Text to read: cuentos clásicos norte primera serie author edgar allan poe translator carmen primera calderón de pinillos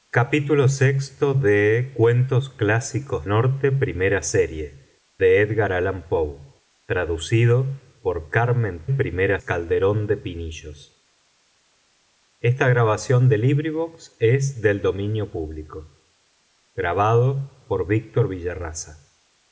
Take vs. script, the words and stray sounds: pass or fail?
pass